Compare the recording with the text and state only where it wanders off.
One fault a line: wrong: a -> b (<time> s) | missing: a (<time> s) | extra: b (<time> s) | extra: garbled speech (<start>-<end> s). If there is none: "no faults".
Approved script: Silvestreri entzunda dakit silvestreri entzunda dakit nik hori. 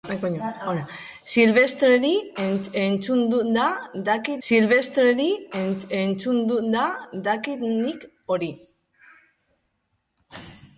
no faults